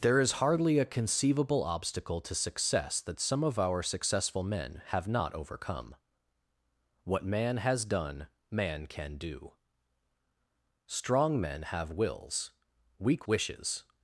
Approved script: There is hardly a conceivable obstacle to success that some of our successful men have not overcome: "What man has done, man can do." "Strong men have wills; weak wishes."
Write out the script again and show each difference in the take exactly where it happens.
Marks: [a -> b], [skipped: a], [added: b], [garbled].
There is hardly a conceivable obstacle to success that some of our successful men have not overcome: "What man has done, man can do." "Strong men have wills; weak wishes."